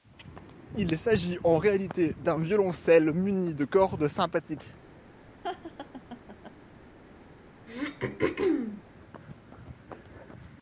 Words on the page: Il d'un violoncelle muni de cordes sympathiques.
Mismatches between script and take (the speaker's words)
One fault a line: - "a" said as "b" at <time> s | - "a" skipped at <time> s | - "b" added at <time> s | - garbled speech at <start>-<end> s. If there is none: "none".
- "s'agit en réalité" added at 1.0 s